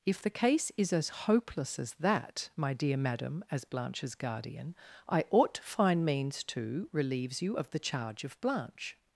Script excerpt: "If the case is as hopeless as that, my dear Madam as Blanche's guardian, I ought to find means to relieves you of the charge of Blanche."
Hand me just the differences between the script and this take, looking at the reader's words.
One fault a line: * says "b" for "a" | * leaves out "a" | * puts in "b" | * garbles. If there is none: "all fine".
all fine